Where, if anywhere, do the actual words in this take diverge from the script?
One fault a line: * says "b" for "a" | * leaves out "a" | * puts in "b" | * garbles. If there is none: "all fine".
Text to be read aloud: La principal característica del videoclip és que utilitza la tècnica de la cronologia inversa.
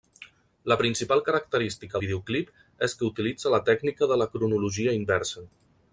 * leaves out "del"